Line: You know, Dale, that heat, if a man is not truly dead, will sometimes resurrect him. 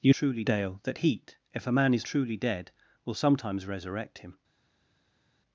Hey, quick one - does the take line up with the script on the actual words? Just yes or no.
no